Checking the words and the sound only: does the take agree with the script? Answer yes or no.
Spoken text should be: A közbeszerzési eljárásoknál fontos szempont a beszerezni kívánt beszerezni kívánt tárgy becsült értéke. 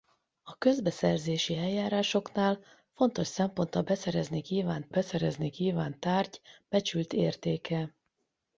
yes